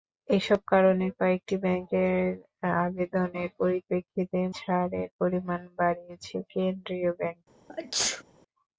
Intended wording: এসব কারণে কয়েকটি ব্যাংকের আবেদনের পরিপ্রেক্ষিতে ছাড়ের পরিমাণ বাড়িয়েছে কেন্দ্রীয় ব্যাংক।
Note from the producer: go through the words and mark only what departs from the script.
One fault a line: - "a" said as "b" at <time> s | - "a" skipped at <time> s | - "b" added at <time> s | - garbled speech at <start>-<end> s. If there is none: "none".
none